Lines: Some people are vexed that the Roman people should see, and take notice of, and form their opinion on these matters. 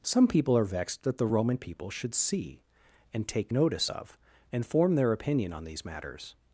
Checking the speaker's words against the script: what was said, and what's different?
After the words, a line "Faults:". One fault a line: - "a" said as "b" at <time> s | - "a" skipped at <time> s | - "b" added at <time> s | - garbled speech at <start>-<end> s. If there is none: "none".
Some people are vexed that the Roman people should see, and take notice of, and form their opinion on these matters.
Faults:
none